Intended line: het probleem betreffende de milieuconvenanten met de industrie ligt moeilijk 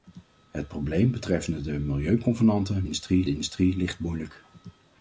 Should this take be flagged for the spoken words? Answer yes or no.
yes